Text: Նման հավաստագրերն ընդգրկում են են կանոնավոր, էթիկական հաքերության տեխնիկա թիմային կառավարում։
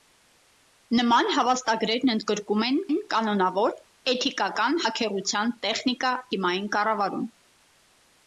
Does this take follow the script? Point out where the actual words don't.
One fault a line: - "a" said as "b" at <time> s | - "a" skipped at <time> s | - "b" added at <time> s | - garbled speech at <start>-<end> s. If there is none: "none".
none